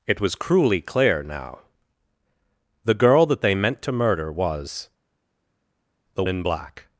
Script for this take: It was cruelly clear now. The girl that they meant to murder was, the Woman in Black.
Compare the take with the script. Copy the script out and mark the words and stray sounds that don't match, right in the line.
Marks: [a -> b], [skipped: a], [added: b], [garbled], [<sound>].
It was cruelly clear now. The girl that they meant to murder was, the [skipped: Woman] in Black.